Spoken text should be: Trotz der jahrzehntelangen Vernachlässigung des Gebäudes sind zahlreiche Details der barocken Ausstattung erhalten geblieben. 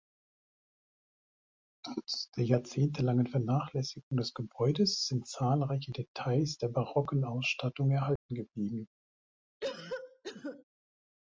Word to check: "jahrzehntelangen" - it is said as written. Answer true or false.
true